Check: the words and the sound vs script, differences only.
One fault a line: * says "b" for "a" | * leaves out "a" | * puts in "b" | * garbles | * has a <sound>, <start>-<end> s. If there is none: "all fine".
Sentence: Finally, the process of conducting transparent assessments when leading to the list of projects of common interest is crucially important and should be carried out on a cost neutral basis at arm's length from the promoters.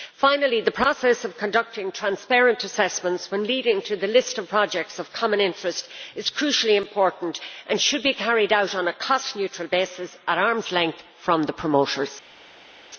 all fine